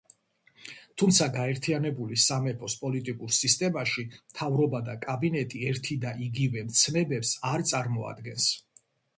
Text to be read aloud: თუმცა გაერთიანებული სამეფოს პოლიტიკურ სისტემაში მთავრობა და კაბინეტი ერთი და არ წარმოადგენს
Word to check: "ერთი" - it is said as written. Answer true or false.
true